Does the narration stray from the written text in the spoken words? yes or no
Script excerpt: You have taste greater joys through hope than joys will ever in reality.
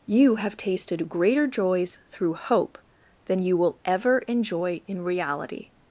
yes